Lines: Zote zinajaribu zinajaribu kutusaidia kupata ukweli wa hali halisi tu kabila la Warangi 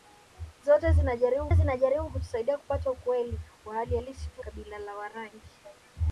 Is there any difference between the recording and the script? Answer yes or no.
no